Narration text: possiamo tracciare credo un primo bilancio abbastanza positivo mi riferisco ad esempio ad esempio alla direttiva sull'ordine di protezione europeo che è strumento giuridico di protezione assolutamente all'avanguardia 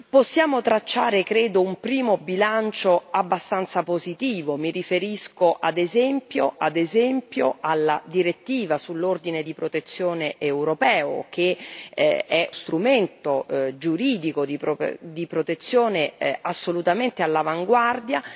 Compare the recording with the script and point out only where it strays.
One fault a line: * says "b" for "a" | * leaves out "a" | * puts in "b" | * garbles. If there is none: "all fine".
all fine